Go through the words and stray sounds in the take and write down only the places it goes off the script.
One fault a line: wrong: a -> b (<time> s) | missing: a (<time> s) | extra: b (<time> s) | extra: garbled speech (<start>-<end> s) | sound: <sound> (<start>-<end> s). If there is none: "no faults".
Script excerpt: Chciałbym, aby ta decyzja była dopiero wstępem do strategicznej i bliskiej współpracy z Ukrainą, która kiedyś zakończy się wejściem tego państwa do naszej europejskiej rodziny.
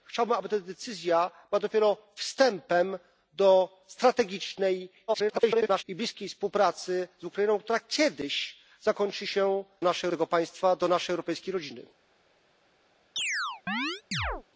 extra: garbled speech (5.1-5.8 s)
wrong: wejściem -> naszej (9.8 s)
sound: chirp (13.2-14.4 s)